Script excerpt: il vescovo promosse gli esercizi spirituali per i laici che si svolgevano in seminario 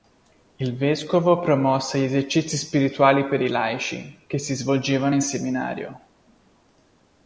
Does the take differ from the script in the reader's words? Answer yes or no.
no